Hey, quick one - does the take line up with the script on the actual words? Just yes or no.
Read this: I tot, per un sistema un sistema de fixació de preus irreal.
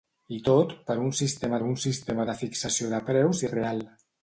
yes